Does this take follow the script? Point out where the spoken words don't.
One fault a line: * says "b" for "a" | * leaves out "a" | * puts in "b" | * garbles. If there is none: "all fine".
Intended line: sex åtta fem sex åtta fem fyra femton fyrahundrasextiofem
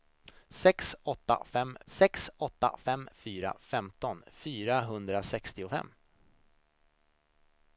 all fine